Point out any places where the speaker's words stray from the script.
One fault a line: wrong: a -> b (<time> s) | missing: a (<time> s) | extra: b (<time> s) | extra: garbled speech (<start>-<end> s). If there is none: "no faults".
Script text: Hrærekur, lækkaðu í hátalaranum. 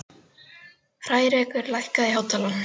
no faults